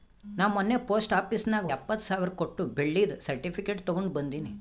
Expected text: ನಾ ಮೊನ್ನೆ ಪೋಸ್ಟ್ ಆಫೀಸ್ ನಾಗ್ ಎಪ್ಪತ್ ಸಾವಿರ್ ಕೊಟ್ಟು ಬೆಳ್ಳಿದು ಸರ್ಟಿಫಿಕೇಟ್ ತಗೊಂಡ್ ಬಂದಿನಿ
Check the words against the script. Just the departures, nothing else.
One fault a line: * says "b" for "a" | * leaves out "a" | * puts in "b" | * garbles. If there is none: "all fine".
all fine